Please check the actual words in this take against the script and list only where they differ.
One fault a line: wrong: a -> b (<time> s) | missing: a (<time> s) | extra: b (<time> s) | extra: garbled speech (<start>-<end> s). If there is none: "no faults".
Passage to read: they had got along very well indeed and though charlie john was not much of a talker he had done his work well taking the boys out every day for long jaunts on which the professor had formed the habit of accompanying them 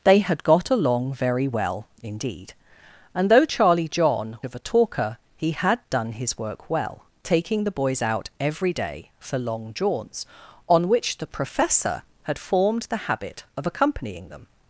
missing: was not much (4.4 s)